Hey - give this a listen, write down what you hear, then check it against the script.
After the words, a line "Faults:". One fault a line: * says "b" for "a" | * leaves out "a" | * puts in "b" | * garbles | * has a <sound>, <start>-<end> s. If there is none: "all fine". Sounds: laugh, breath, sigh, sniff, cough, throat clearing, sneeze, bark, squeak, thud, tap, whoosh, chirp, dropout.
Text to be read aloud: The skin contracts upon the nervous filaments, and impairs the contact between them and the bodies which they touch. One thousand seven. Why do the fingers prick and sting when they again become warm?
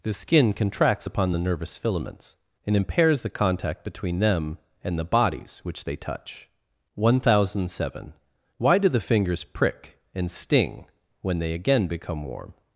The skin contracts upon the nervous filaments, and impairs the contact between them and the bodies which they touch. One thousand seven. Why do the fingers prick and sting when they again become warm?
Faults:
all fine